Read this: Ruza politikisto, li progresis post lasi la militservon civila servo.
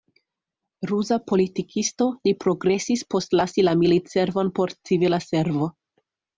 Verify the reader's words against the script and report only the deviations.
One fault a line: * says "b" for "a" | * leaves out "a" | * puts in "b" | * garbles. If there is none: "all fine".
* puts in "por"